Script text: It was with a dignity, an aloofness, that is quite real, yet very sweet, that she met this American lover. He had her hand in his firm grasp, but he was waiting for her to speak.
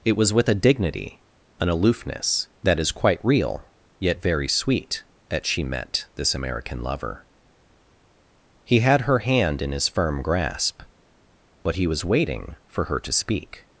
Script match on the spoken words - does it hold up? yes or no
yes